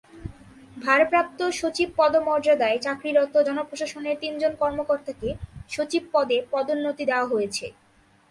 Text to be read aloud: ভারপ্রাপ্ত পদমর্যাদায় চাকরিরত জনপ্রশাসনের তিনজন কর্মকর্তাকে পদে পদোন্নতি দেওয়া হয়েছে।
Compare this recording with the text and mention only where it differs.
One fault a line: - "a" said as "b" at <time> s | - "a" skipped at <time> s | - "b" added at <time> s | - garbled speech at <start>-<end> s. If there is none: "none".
- "সচিব" added at 1.5 s
- "সচিব" added at 5.7 s